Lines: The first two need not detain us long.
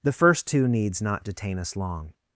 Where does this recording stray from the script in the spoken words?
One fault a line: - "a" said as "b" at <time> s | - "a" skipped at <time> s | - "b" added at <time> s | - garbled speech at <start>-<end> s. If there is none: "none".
- "need" said as "needs" at 0.7 s